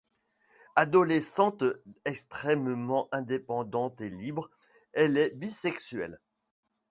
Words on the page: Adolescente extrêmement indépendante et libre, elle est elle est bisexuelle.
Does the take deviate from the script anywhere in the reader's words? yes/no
yes